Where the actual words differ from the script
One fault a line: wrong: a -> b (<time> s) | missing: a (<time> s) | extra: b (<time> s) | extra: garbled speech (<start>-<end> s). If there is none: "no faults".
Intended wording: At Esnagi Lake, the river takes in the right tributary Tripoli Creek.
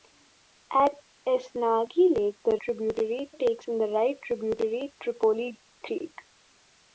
wrong: river -> tributary (2.6 s)